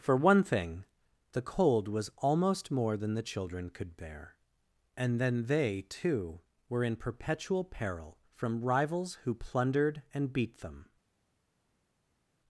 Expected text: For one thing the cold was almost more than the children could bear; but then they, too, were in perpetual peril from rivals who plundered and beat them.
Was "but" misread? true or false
true